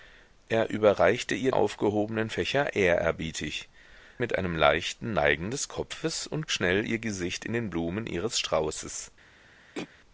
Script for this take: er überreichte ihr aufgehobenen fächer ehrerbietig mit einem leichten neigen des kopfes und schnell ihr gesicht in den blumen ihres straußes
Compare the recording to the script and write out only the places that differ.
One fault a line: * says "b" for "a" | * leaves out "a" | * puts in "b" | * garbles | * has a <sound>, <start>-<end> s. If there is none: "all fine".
* has a throat clearing, 9.7-9.9 s